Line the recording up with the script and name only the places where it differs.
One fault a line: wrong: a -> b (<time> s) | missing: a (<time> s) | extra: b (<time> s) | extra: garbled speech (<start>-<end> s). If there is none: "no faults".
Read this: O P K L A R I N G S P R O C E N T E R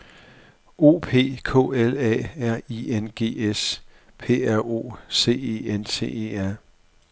no faults